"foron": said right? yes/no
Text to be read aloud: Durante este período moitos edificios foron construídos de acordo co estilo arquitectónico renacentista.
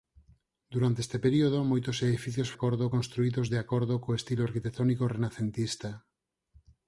no